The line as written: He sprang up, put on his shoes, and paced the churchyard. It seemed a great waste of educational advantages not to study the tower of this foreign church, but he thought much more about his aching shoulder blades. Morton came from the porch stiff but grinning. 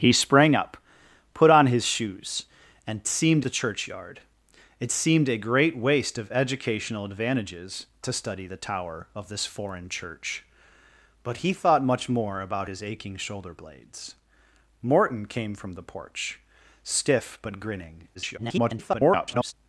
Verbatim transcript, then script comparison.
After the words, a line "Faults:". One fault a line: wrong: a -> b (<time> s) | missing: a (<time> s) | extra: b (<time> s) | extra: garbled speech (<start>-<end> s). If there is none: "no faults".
He sprang up, put on his shoes, and seemed the churchyard. It seemed a great waste of educational advantages to study the tower of this foreign church, but he thought much more about his aching shoulder blades. Morton came from the porch stiff but grinning. [garbled]
Faults:
wrong: paced -> seemed (3.1 s)
missing: not (7.9 s)
extra: garbled speech (18.1-19.5 s)